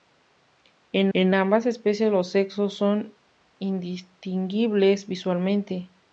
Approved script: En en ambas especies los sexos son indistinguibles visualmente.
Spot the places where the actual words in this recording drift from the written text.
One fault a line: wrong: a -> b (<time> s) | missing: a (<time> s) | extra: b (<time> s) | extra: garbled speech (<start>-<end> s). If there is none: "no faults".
no faults